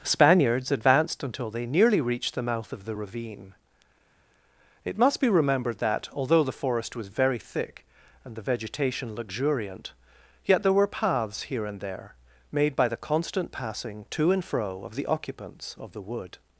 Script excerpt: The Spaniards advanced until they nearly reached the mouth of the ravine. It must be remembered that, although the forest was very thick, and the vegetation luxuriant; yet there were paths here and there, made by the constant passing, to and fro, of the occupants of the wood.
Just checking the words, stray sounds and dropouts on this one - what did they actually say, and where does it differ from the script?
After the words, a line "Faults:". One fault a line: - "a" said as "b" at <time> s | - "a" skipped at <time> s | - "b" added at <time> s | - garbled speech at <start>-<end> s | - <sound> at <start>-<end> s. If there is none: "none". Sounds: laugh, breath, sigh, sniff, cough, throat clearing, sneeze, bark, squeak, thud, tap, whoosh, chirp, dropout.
Spaniards advanced until they nearly reached the mouth of the ravine. It must be remembered that, although the forest was very thick, and the vegetation luxuriant; yet there were paths here and there, made by the constant passing, to and fro, of the occupants of the wood.
Faults:
- "The" skipped at 0.0 s